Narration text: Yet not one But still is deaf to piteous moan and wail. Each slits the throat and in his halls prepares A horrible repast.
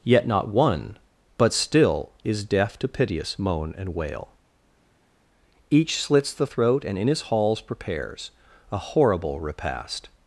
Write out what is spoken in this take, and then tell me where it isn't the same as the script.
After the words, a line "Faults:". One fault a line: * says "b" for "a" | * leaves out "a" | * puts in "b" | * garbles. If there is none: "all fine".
Yet not one But still is deaf to piteous moan and wail. Each slits the throat and in his halls prepares A horrible repast.
Faults:
all fine